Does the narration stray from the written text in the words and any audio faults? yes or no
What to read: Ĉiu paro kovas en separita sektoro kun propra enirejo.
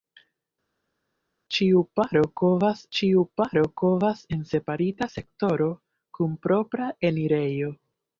yes